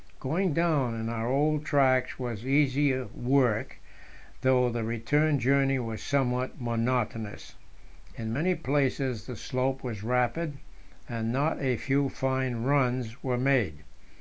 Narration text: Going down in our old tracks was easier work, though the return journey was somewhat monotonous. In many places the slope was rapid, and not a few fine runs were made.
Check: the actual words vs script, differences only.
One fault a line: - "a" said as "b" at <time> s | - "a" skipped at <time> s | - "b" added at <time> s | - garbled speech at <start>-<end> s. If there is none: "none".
none